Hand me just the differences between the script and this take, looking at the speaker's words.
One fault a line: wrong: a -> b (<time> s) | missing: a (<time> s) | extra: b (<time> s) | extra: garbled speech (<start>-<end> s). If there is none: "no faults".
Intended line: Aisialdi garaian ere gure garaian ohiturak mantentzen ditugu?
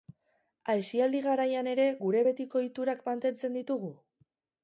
wrong: garaian -> betiko (2.3 s)